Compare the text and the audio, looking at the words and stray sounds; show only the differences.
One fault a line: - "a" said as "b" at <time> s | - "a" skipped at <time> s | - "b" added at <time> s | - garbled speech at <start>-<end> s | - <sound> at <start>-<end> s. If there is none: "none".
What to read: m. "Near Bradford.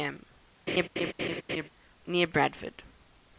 - laugh at 0.7-1.7 s